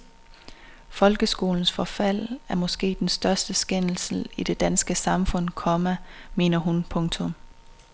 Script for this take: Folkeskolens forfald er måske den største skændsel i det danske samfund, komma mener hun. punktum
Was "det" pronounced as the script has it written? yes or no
yes